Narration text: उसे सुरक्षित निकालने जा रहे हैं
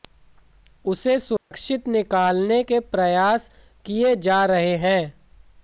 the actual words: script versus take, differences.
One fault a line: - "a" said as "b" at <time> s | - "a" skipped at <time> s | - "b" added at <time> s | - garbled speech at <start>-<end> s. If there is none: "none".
- "के प्रयास किए" added at 2.6 s